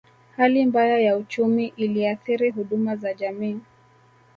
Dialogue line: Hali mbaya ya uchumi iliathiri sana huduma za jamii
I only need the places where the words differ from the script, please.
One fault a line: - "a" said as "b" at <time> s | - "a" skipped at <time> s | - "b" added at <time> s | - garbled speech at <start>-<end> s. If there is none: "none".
- "sana" skipped at 2.5 s